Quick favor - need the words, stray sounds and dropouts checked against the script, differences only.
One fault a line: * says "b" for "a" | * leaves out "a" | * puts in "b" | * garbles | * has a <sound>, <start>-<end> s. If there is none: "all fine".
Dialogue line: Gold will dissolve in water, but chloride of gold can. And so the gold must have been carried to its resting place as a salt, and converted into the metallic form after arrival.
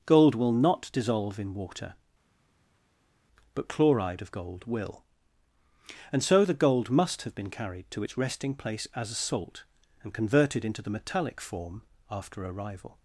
* puts in "not"
* says "will" for "can"